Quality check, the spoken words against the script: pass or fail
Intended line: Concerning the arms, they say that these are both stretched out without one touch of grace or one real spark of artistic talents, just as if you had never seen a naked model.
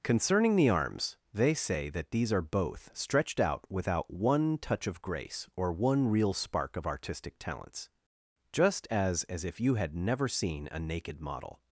fail